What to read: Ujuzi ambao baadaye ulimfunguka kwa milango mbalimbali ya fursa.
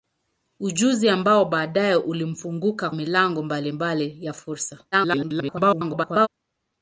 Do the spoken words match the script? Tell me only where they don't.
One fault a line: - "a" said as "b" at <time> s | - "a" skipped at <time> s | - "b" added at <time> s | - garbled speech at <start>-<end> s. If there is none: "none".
- "kwa" skipped at 2.9 s
- garbled speech at 4.9-6.3 s